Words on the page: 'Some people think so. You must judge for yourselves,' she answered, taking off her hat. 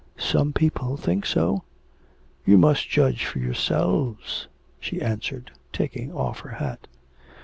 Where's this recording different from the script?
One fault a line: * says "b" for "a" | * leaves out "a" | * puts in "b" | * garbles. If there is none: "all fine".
all fine